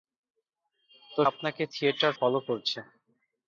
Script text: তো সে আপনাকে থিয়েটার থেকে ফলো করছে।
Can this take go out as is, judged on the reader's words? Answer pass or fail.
fail